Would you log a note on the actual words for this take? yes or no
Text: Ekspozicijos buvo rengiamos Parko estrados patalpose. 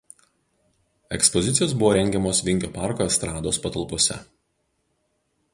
yes